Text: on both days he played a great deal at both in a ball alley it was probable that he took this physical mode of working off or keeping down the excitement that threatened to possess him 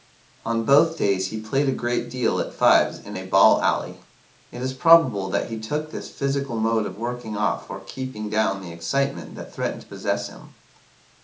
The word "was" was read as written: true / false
false